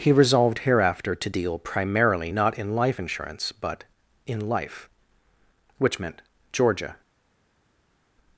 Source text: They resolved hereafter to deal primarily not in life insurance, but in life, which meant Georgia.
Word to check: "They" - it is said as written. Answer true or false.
false